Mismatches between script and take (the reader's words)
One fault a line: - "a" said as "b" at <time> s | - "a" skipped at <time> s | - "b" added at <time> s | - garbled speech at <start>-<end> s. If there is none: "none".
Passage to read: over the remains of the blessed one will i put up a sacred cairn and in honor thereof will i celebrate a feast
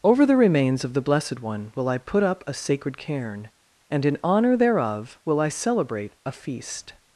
none